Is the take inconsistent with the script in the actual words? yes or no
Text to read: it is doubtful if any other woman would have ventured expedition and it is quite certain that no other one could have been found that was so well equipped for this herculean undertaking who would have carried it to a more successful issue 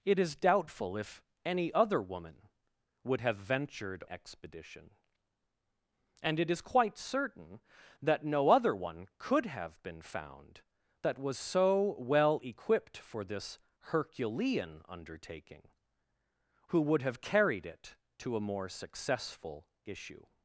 no